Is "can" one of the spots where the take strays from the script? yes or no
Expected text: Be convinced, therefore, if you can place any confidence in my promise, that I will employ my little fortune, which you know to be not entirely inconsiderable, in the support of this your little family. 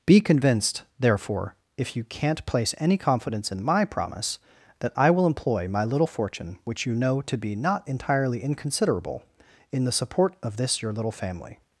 yes